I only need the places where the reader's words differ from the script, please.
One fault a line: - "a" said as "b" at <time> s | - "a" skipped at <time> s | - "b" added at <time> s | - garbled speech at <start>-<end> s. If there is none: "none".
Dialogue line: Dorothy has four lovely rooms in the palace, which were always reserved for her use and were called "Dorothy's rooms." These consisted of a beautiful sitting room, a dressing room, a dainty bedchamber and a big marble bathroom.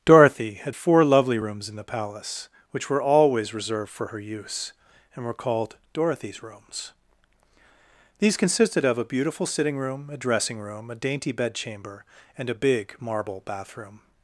- "has" said as "had" at 0.6 s